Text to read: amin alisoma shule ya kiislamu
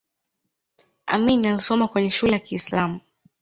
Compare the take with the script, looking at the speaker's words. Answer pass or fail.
fail